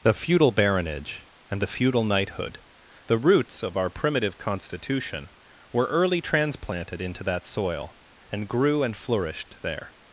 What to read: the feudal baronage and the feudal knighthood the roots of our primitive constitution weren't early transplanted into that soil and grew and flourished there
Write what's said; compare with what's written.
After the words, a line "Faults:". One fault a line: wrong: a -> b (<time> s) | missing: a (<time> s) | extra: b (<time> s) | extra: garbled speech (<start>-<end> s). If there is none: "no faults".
the feudal baronage and the feudal knighthood the roots of our primitive constitution were early transplanted into that soil and grew and flourished there
Faults:
wrong: weren't -> were (5.7 s)